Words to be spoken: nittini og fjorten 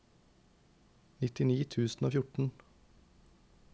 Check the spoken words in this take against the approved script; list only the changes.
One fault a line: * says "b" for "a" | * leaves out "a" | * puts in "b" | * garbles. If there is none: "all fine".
* puts in "tusen"